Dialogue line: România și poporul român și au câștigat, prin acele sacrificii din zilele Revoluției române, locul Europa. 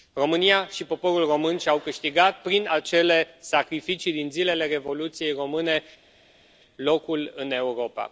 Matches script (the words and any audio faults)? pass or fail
fail